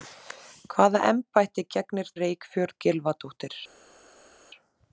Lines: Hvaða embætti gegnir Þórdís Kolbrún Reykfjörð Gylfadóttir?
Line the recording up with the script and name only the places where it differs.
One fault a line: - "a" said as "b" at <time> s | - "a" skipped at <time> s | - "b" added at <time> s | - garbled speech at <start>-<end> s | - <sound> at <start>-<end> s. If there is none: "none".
- "Þórdís Kolbrún" skipped at 2.1 s